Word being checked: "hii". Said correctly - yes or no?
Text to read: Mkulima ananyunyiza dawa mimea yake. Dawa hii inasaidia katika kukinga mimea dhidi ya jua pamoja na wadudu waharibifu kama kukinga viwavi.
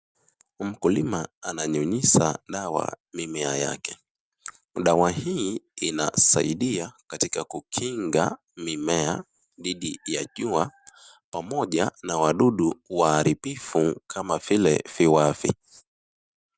yes